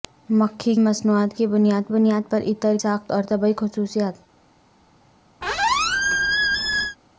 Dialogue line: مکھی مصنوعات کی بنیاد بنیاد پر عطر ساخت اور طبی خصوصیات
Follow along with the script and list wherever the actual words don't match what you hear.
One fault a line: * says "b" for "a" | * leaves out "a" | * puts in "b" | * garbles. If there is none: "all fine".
all fine